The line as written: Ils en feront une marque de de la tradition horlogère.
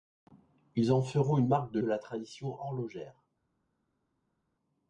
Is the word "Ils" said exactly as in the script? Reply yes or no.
yes